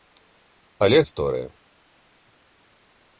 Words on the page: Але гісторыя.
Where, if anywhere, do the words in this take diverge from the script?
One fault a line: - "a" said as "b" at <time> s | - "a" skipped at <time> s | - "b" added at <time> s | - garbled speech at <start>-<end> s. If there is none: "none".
none